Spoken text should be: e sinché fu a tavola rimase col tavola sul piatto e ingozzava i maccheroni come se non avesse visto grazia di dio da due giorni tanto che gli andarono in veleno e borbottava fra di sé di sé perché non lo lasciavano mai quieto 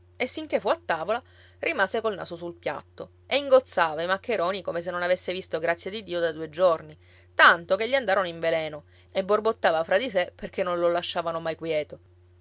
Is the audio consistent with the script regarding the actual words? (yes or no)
no